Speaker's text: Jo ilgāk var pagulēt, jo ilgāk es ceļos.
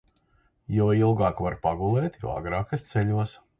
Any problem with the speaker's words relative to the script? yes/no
yes